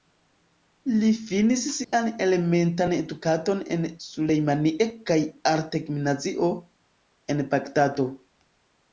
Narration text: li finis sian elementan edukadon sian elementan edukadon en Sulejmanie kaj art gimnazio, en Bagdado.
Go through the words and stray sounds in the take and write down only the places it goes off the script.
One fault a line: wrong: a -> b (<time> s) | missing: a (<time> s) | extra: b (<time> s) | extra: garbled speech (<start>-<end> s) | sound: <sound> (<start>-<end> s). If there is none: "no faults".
sound: dropout (1.8-1.9 s)
missing: sian elementan edukadon (3.6 s)